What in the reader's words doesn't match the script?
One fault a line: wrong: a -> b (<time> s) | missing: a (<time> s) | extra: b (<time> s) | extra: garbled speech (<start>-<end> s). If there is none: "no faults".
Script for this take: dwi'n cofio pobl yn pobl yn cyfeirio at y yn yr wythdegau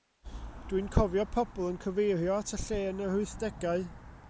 missing: pobl yn (1.8 s)
extra: lle (2.6 s)